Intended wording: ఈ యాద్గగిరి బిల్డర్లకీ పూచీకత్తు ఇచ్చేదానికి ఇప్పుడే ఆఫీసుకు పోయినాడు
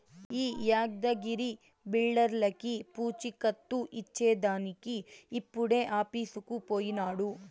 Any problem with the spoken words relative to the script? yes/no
no